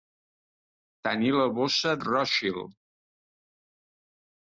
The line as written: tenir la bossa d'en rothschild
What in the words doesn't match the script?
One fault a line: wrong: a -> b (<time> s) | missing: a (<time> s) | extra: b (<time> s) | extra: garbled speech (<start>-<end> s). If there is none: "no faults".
missing: d'en (1.9 s)